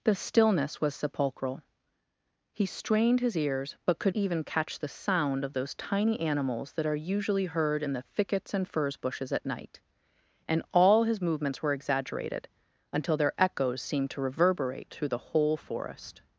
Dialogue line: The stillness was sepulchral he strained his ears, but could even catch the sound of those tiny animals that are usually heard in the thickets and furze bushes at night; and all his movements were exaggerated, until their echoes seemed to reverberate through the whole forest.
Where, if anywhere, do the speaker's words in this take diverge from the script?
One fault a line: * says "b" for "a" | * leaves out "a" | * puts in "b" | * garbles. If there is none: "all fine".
all fine